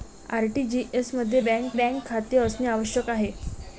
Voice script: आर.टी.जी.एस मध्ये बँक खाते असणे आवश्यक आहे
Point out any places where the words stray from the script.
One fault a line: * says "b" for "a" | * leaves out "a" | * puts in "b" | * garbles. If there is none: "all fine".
* puts in "बँक"